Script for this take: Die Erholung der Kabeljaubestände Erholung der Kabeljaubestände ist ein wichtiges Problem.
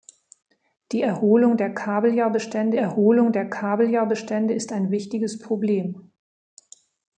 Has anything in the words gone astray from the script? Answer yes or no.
no